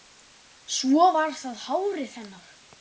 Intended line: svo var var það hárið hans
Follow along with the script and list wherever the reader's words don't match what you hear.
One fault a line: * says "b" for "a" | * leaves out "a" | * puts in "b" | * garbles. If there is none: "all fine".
* leaves out "var"
* says "hennar" for "hans"